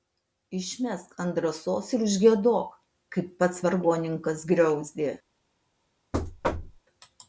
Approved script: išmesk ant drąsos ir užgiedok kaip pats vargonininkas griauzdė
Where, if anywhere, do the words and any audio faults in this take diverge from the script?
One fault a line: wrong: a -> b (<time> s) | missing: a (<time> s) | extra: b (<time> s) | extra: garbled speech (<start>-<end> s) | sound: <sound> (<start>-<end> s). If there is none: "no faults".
sound: thud (6.1-6.8 s)